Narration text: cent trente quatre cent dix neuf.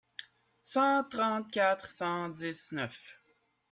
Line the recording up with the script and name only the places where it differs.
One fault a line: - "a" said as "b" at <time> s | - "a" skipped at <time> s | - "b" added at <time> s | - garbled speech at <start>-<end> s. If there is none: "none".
none